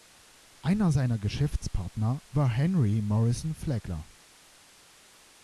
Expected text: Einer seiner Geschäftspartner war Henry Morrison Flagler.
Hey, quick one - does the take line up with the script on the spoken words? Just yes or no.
yes